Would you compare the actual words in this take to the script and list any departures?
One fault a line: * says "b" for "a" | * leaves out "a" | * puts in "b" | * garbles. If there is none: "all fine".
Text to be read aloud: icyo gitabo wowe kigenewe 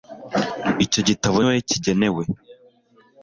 all fine